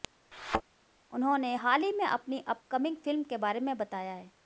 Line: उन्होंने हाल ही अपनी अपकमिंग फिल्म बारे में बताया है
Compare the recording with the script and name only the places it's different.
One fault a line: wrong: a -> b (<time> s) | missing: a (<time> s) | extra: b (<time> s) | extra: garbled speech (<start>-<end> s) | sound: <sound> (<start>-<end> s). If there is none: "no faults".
sound: thud (0.3-0.6 s)
extra: में (1.9 s)
extra: के (3.2 s)